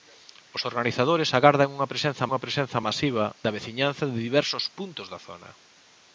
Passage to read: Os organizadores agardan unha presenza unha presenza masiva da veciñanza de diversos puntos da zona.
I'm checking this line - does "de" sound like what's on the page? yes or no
yes